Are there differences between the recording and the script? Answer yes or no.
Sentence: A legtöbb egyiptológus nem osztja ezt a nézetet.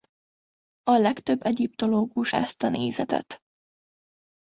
yes